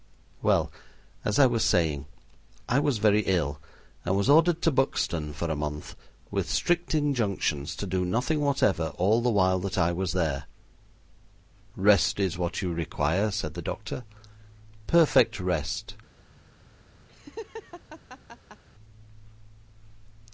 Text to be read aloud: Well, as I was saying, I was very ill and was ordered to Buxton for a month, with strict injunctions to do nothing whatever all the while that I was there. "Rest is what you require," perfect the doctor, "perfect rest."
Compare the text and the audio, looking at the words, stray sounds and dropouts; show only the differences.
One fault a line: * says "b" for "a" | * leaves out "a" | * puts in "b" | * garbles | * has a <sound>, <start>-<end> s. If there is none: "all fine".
* says "said" for "perfect"
* has a laugh, 17.1-18.6 s